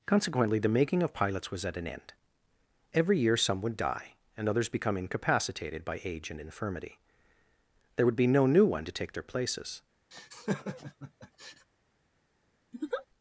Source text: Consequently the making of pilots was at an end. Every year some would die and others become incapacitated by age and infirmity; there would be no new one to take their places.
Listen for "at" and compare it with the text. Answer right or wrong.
right